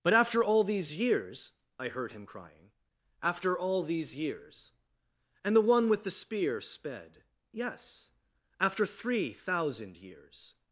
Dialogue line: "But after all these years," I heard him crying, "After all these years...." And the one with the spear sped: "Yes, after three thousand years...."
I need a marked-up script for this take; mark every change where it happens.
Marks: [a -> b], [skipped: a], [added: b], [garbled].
"But after all these years," I heard him crying, "After all these years...." And the one with the spear sped: "Yes, after three thousand years...."